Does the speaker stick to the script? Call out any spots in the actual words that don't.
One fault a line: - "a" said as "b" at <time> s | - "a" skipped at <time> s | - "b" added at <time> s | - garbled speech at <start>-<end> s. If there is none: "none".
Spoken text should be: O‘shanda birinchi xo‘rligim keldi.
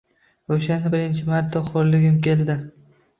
- "marta" added at 1.3 s